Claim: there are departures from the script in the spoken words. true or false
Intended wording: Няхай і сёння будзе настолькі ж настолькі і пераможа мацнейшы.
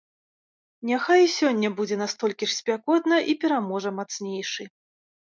true